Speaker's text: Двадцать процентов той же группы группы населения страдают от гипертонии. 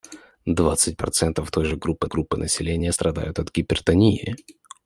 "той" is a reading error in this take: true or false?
false